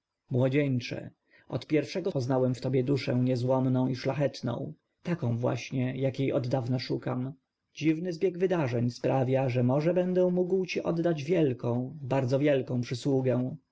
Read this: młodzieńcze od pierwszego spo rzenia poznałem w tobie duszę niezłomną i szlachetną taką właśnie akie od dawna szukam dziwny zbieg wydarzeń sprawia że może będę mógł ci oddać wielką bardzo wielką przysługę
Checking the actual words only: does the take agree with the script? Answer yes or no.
no